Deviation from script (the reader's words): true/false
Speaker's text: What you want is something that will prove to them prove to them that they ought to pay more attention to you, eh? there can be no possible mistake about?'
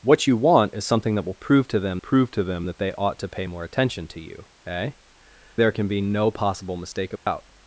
false